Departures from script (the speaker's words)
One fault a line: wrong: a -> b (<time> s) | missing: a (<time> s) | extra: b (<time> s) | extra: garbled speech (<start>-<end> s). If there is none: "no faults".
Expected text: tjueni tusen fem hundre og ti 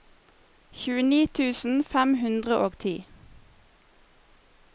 no faults